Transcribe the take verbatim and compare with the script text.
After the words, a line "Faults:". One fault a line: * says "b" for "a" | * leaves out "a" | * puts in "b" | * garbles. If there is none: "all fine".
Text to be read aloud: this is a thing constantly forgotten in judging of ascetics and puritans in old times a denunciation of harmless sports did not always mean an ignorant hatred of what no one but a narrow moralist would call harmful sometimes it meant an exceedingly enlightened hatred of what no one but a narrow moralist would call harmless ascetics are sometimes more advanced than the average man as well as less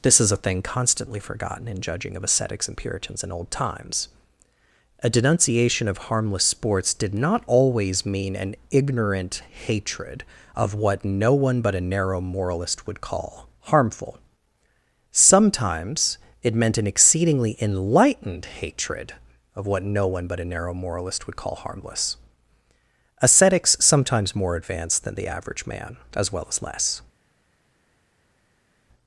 this is a thing constantly forgotten in judging of ascetics and puritans in old times a denunciation of harmless sports did not always mean an ignorant hatred of what no one but a narrow moralist would call harmful sometimes it meant an exceedingly enlightened hatred of what no one but a narrow moralist would call harmless ascetics sometimes more advanced than the average man as well as less
Faults:
* leaves out "are"